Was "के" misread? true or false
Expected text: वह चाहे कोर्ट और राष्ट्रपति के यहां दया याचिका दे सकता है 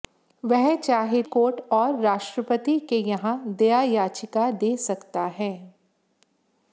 false